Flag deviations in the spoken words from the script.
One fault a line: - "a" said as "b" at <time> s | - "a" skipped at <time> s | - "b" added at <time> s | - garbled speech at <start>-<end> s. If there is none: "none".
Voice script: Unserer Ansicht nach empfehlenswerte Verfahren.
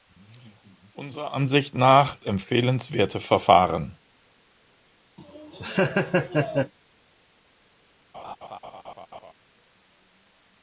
none